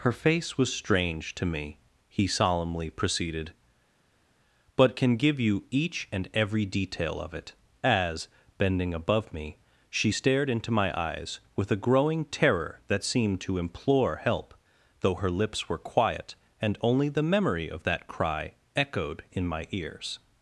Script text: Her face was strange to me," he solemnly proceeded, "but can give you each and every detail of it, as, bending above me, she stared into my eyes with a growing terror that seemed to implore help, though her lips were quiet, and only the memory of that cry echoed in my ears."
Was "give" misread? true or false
false